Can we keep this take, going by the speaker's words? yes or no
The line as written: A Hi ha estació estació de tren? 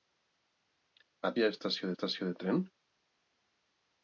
yes